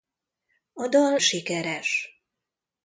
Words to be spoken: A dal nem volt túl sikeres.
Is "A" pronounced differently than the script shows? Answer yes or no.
no